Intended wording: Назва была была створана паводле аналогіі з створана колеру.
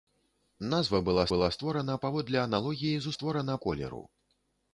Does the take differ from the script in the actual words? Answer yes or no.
no